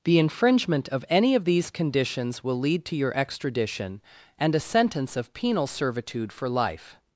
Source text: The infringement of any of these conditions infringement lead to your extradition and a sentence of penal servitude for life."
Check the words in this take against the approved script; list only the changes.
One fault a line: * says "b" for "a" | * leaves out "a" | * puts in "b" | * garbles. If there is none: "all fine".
* says "will" for "infringement"